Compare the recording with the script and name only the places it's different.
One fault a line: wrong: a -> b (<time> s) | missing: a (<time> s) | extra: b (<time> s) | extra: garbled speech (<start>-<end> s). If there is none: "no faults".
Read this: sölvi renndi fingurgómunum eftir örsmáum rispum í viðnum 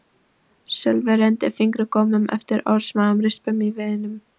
no faults